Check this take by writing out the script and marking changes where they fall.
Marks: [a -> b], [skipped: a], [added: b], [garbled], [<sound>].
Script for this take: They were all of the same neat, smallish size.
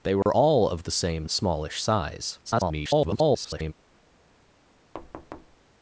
They were [dropout] all of the same [skipped: neat,] smallish size. [garbled] [thud]